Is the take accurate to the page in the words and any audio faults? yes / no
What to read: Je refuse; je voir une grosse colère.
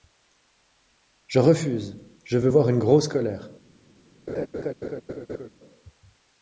no